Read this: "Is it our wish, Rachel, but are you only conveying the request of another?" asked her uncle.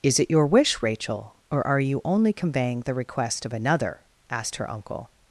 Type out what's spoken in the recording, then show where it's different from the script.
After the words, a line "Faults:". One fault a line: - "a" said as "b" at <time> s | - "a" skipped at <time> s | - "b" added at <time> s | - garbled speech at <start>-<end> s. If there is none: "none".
"Is it your wish, Rachel, or are you only conveying the request of another?" asked her uncle.
Faults:
- "our" said as "your" at 0.3 s
- "but" said as "or" at 1.5 s